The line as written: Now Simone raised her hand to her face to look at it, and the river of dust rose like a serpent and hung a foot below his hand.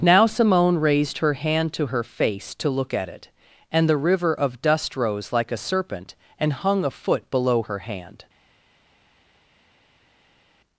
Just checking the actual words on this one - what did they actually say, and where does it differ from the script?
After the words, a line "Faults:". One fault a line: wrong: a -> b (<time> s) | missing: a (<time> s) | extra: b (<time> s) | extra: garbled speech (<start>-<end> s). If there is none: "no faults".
Now Simone raised her hand to her face to look at it, and the river of dust rose like a serpent and hung a foot below her hand.
Faults:
wrong: his -> her (7.6 s)